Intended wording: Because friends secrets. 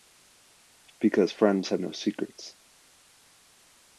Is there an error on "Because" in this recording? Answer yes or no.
no